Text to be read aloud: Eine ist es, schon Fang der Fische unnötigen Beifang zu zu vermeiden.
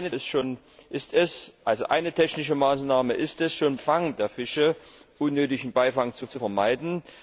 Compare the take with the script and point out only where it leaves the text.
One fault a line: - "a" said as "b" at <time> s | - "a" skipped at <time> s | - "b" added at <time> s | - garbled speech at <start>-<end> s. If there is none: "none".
none